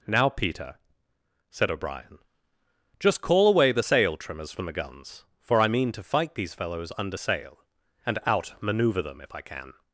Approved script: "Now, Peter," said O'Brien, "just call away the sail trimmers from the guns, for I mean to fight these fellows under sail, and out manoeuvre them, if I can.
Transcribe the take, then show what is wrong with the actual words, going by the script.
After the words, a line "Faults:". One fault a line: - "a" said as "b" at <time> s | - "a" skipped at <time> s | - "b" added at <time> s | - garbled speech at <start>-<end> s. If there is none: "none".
"Now, Peter," said O'Brien, "just call away the sail trimmers from the guns, for I mean to fight these fellows under sail, and out manoeuvre them, if I can.
Faults:
none